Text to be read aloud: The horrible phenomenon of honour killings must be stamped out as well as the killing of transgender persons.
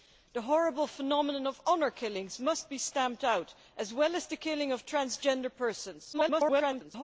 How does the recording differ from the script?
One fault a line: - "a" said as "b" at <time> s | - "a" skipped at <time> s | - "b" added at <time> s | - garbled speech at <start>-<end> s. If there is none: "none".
- garbled speech at 6.1-7.0 s